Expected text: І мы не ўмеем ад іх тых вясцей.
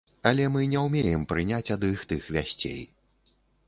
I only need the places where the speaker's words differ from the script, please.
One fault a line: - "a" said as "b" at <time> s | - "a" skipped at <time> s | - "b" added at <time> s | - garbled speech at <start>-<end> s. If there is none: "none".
- "І" said as "Але" at 0.3 s
- "прыняць" added at 1.3 s